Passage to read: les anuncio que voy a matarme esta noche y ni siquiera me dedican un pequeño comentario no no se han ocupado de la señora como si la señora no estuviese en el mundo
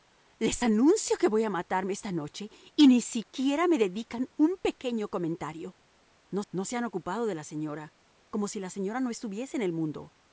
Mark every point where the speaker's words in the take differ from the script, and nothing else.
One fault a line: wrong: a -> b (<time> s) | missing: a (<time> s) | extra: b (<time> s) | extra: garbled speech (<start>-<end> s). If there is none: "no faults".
no faults